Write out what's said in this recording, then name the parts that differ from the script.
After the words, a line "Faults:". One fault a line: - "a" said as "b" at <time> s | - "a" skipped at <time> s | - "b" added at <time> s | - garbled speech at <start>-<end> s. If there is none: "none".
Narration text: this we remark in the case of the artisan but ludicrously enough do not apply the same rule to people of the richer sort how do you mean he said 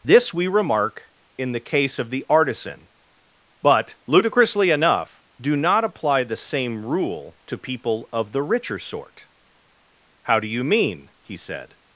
this we remark in the case of the artisan but ludicrously enough do not apply the same rule to people of the richer sort how do you mean he said
Faults:
none